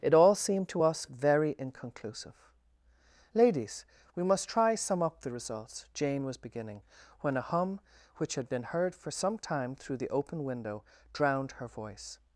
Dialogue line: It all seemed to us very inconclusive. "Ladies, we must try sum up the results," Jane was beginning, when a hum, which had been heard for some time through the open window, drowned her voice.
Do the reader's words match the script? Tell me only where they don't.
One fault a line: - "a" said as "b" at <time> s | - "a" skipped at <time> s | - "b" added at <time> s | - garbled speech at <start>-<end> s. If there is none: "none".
none